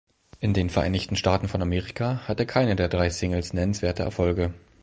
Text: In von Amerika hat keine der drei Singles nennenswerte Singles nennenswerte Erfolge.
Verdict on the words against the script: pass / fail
fail